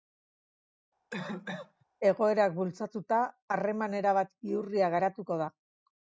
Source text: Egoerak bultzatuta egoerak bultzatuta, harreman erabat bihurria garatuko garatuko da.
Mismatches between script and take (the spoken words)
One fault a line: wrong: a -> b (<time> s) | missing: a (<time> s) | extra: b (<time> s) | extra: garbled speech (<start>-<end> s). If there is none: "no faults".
missing: egoerak bultzatuta (3.2 s)
missing: garatuko (5.4 s)